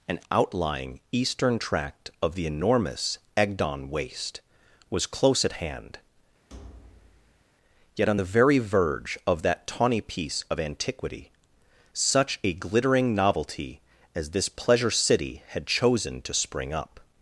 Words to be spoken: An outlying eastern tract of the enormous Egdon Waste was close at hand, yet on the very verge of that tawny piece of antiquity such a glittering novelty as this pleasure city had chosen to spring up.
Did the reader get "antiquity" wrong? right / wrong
right